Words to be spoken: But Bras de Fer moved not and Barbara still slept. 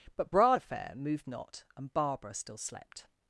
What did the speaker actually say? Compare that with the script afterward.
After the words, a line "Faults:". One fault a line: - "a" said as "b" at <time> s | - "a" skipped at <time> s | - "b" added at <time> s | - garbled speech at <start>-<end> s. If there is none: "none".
But Bras de Fer moved not and Barbara still slept.
Faults:
none